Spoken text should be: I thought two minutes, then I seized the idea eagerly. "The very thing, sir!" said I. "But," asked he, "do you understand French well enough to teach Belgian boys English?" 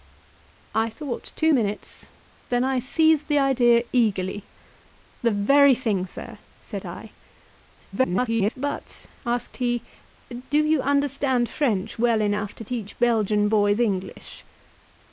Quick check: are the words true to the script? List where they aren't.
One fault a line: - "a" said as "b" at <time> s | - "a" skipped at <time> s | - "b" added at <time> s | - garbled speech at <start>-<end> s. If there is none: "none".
- garbled speech at 7.9-8.5 s